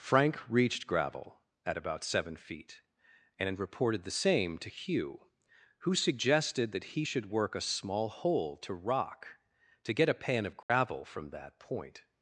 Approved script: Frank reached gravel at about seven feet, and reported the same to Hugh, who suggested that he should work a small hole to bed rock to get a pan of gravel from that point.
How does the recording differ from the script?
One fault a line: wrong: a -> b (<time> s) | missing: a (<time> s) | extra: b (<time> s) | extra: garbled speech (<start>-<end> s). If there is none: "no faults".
missing: bed (8.7 s)